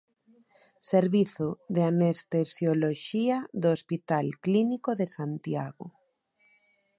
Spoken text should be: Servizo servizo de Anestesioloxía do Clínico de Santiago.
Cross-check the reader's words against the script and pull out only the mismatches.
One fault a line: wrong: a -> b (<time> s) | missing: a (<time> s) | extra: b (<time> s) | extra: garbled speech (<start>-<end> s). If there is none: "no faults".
missing: servizo (1.5 s)
extra: Hospital (3.8 s)